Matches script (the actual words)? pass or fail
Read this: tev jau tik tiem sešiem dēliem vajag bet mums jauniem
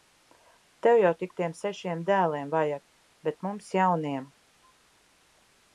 pass